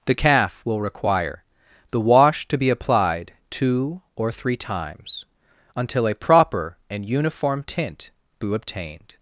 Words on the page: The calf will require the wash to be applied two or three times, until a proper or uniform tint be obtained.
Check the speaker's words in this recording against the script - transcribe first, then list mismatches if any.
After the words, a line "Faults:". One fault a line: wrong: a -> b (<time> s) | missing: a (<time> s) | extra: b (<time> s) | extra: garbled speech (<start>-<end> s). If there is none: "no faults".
The calf will require the wash to be applied two or three times, until a proper and uniform tint be obtained.
Faults:
wrong: or -> and (6.9 s)